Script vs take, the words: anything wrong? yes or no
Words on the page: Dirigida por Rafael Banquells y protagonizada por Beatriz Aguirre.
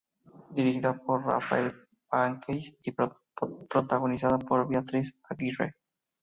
no